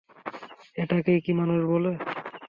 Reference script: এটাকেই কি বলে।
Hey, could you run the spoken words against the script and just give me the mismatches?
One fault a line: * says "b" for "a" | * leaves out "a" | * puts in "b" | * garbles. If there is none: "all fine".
* puts in "মানুষ"